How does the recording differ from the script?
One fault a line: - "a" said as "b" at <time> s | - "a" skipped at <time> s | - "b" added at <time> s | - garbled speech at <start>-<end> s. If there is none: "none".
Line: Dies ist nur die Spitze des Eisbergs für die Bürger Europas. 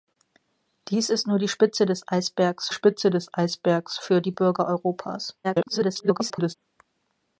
- "Spitze des Eisbergs" added at 2.7 s
- garbled speech at 5.4-6.6 s